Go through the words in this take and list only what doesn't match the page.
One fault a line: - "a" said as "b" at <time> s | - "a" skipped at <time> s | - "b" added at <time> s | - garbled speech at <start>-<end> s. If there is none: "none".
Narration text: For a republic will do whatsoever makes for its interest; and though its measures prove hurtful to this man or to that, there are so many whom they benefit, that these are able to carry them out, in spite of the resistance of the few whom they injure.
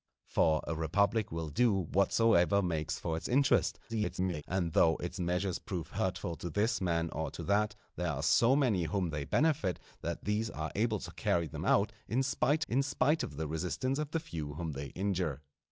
- garbled speech at 3.9-4.4 s
- "in spite" added at 12.7 s